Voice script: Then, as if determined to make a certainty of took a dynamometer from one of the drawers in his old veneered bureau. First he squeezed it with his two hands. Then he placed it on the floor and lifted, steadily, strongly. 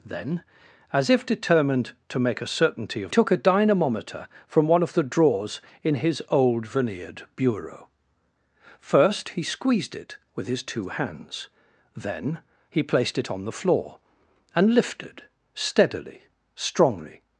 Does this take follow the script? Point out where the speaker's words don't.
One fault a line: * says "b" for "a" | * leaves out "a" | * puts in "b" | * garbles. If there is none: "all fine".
all fine